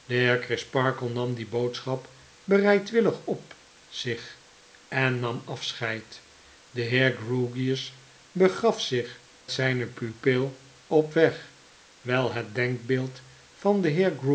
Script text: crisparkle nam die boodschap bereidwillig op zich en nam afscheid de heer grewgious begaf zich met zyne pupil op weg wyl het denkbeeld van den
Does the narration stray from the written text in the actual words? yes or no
yes